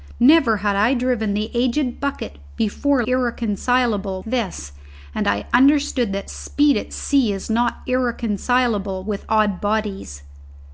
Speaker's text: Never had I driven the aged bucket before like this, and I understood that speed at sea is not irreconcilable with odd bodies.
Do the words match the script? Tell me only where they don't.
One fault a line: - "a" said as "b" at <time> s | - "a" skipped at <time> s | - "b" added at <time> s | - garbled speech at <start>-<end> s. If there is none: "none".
- "like" said as "irreconcilable" at 3.0 s